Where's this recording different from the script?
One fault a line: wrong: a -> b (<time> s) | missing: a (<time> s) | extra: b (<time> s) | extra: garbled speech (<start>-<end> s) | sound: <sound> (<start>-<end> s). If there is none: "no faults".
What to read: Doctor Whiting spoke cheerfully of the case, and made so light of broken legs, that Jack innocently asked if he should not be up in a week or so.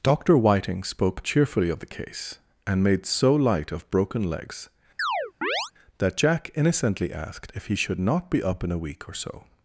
sound: chirp (5.0-5.7 s)